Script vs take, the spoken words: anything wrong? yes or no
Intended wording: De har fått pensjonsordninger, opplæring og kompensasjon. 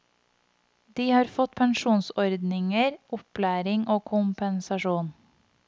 no